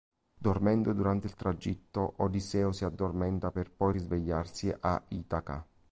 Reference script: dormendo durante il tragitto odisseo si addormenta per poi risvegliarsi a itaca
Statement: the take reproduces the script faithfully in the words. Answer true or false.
true